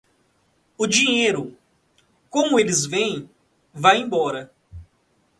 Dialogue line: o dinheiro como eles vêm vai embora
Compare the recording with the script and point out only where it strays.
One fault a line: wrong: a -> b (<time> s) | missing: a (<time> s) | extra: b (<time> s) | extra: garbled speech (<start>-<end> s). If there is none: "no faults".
no faults